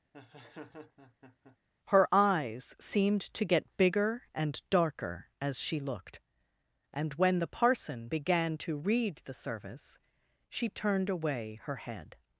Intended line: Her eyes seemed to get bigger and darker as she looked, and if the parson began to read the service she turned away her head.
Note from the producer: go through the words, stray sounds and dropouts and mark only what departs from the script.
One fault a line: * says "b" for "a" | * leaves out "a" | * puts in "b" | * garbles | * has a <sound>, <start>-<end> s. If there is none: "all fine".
* has a laugh, 0.1-1.6 s
* says "when" for "if"